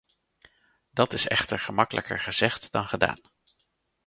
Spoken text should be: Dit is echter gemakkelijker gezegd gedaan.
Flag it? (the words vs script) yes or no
yes